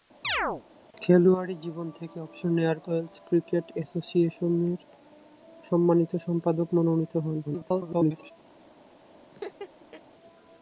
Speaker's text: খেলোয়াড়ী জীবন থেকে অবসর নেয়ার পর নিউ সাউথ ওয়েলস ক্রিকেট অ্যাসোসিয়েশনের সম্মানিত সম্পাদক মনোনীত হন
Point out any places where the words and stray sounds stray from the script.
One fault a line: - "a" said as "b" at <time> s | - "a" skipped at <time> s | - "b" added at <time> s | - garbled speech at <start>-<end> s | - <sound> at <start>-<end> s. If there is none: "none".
- chirp at 0.2-0.6 s
- "পর নিউ সাউথ" skipped at 2.8 s
- garbled speech at 7.5-8.3 s
- laugh at 9.3-10.0 s